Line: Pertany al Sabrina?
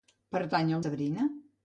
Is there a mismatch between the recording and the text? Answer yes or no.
no